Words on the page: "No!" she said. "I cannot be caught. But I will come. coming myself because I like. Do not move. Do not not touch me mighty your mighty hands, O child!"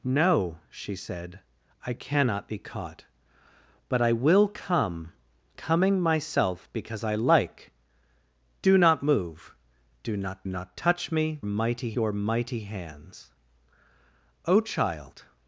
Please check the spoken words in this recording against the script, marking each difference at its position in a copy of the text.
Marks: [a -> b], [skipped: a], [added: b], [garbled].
"No!" she said. "I cannot be caught. But I will come. coming myself because I like. Do not move. Do not not touch me mighty your mighty hands, O child!"